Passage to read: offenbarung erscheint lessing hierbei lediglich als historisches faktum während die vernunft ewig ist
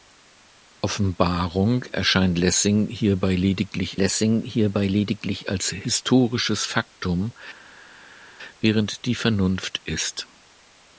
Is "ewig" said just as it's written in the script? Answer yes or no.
no